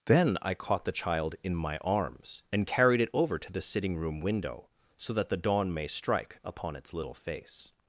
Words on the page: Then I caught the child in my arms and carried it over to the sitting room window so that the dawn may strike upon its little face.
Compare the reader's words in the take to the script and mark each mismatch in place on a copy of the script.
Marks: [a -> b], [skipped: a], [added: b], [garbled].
Then I caught the child in my arms and carried it over to the sitting room window so that the dawn may strike upon its little face.